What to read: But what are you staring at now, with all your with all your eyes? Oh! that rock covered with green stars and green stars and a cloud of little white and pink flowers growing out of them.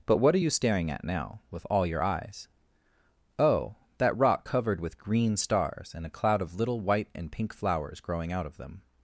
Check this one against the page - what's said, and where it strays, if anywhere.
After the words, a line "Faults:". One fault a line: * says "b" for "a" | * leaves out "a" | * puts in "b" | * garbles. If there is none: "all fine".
But what are you staring at now, with all your eyes? Oh! that rock covered with green stars and a cloud of little white and pink flowers growing out of them.
Faults:
* leaves out "with all your"
* leaves out "green stars and"